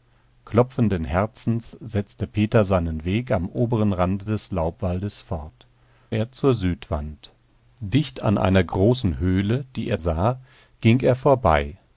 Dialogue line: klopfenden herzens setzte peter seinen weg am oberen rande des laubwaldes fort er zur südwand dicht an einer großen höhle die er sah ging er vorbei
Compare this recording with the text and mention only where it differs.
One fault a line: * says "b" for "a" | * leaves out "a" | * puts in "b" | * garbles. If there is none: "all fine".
all fine